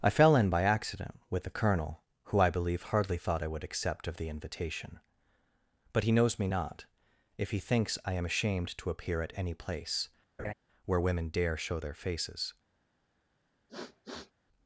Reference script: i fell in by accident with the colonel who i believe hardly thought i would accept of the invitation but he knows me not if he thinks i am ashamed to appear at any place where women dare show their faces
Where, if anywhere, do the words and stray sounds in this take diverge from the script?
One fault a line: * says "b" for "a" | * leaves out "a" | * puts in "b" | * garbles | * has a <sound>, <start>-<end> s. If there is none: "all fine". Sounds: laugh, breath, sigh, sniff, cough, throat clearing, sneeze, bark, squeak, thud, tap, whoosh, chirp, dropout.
* has a laugh, 10.4-10.5 s
* has a sniff, 13.7-14.3 s